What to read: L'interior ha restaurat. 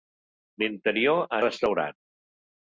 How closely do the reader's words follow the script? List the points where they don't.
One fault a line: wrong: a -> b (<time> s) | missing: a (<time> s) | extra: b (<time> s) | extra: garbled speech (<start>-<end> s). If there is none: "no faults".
no faults